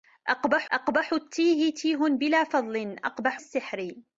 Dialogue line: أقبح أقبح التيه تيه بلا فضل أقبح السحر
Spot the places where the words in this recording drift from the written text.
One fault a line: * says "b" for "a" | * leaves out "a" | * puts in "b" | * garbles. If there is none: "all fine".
all fine